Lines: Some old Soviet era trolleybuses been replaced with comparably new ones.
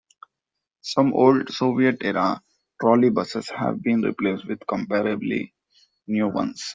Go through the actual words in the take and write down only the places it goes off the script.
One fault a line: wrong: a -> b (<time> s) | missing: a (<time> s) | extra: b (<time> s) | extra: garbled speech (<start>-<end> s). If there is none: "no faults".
extra: have (3.5 s)